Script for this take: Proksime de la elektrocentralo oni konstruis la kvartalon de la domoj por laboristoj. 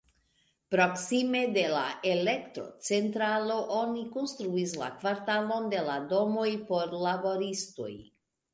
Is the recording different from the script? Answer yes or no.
no